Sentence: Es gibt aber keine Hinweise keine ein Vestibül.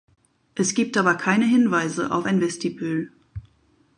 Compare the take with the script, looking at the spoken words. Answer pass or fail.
fail